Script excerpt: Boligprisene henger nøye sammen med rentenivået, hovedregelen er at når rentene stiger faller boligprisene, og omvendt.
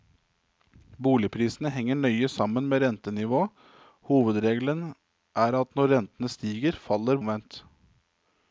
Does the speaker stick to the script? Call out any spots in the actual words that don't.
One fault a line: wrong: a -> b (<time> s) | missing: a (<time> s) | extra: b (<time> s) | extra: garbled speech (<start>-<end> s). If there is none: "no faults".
missing: boligprisene og (7.2 s)